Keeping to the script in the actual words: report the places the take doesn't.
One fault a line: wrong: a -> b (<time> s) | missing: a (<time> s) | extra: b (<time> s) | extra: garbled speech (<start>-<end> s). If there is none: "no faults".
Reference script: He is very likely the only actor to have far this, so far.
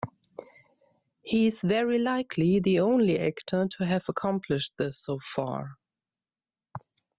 wrong: far -> accomplished (4.1 s)